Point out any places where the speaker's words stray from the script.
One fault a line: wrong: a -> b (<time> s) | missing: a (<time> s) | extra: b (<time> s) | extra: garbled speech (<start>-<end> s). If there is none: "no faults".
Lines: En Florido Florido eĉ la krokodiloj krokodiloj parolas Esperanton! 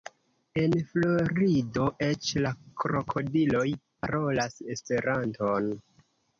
missing: Florido (1.9 s)
missing: krokodiloj (3.7 s)